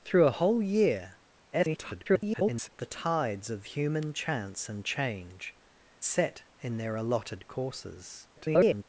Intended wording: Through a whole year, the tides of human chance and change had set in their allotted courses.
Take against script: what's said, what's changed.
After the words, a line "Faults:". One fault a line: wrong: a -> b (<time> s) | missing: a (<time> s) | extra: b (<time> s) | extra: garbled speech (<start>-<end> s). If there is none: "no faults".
Through a whole year, [garbled] the tides of human chance and change set in their allotted courses. [garbled]
Faults:
extra: garbled speech (1.5-2.7 s)
missing: had (5.5 s)
extra: garbled speech (8.3-8.8 s)